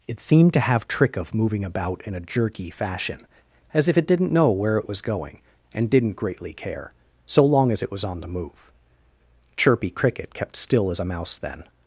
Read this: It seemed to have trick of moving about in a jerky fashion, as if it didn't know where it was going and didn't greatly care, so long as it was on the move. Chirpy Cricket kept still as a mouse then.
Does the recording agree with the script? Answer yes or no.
yes